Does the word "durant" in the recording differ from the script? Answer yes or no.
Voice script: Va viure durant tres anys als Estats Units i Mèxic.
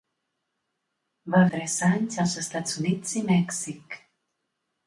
yes